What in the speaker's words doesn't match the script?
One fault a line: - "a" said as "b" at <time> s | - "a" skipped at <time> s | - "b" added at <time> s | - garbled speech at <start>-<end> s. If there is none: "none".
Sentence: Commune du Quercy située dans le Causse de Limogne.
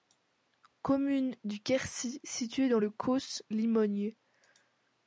- "de" skipped at 3.4 s